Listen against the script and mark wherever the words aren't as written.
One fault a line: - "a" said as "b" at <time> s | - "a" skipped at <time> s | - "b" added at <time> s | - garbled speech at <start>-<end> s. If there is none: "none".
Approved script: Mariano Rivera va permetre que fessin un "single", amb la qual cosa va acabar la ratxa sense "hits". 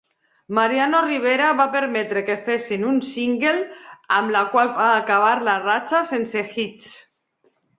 - "cosa" skipped at 4.8 s